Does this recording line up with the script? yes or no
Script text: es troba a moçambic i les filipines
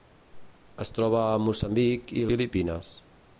no